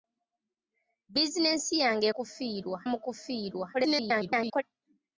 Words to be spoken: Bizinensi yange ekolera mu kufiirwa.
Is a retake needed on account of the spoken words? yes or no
yes